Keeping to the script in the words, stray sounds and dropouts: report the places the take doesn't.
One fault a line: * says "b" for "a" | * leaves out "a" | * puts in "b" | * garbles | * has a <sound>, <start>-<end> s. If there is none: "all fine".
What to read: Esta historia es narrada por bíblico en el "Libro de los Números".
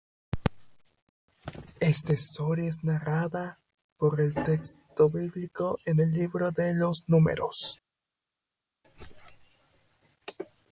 * puts in "el texto"